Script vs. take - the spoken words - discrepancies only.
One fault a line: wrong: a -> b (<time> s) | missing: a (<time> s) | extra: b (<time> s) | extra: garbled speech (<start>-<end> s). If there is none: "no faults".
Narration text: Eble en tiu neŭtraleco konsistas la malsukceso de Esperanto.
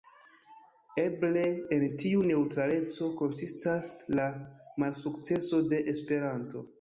no faults